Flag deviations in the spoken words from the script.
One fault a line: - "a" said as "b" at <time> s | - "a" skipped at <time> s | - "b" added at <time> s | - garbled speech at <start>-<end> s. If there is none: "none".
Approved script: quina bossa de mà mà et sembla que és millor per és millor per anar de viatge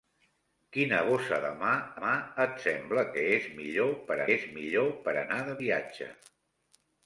none